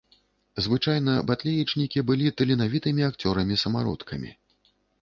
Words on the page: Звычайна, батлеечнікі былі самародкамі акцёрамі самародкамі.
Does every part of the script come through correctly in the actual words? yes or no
no